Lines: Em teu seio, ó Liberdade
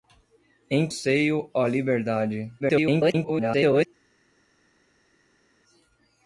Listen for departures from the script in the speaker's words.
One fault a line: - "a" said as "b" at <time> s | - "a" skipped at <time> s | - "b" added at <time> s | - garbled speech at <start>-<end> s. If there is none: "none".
- "teu" skipped at 0.9 s
- garbled speech at 2.6-3.9 s